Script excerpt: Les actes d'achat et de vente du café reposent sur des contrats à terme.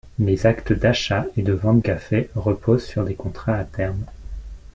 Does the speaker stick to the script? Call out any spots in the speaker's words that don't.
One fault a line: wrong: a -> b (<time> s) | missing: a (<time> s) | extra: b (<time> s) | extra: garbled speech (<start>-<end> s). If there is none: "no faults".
missing: du (1.8 s)